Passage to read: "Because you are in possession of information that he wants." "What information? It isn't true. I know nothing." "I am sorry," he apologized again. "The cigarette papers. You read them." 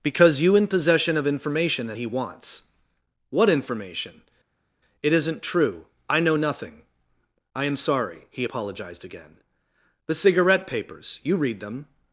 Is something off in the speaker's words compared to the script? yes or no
yes